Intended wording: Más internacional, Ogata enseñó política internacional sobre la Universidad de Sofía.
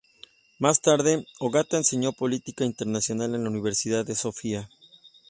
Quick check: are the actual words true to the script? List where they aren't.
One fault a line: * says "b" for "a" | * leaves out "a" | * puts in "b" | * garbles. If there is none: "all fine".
* says "tarde" for "internacional"
* says "en" for "sobre"